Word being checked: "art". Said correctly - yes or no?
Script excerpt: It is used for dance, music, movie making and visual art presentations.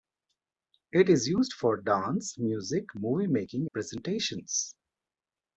no